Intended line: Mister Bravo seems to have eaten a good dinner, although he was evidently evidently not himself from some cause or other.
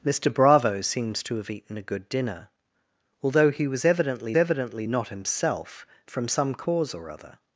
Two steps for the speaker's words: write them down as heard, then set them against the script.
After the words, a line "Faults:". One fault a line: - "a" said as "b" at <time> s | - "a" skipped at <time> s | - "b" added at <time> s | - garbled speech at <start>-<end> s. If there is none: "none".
Mister Bravo seems to have eaten a good dinner, although he was evidently evidently not himself from some cause or other.
Faults:
none